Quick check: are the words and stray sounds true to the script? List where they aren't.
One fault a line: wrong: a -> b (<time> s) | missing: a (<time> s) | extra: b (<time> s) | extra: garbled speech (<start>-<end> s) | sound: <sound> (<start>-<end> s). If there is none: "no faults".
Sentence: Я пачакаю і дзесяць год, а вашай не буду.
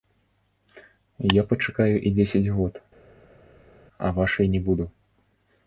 no faults